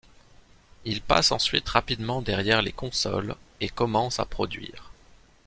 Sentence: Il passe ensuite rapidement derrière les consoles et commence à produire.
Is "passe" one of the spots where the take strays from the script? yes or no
no